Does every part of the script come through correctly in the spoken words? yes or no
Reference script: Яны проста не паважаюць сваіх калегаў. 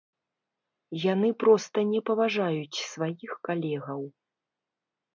yes